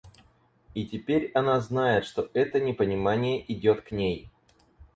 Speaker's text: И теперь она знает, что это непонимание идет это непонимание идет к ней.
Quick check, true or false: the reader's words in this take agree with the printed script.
false